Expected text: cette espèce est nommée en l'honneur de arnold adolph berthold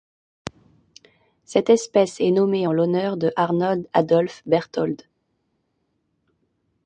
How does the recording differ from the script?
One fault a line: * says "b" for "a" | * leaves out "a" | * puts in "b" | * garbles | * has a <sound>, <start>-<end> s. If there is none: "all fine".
all fine